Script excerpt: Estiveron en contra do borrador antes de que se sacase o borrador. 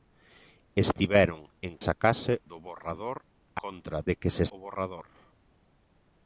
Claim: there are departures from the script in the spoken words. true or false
true